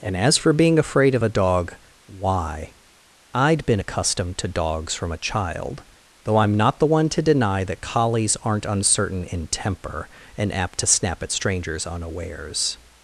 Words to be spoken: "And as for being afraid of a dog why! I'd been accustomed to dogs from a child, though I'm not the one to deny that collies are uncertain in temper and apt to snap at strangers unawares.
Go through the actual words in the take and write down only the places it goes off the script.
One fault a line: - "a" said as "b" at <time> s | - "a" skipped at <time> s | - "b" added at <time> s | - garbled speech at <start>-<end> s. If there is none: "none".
- "are" said as "aren't" at 8.4 s